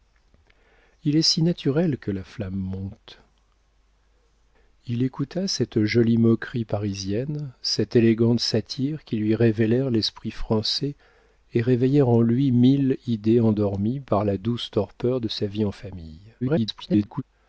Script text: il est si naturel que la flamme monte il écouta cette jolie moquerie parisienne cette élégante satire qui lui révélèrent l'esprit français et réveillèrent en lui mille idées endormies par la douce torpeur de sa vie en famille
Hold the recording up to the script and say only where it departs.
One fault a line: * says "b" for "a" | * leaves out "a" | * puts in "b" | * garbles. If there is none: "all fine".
* garbles